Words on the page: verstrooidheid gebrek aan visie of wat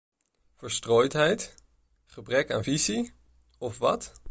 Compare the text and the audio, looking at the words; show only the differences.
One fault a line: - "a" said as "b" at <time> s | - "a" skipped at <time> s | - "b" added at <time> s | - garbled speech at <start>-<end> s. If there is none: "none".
none